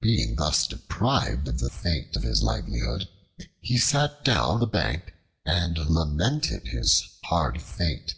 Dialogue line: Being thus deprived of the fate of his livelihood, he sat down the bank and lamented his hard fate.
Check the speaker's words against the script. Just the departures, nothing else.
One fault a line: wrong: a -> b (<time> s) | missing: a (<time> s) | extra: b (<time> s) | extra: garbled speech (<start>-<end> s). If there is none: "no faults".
no faults